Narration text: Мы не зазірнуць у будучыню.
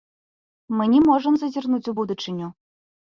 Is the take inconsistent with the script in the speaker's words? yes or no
yes